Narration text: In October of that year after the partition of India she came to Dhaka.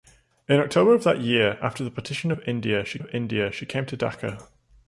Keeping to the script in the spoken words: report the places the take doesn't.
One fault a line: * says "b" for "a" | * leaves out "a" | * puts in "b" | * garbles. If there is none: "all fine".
* puts in "of India she"